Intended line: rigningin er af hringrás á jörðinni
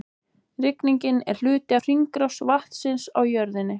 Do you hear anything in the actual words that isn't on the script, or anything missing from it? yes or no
yes